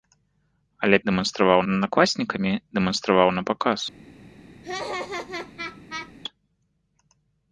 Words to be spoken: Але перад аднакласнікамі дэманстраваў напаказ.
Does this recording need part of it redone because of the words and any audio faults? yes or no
yes